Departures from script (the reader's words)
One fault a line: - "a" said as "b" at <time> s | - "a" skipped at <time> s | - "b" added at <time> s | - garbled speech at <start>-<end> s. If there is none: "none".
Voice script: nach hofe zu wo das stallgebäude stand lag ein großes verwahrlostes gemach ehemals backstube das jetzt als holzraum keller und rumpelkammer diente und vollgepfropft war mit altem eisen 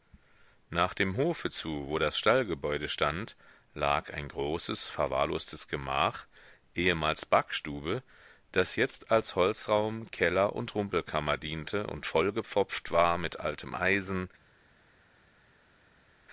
- "dem" added at 0.9 s